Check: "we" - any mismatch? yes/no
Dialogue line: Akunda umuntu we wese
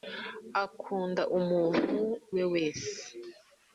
no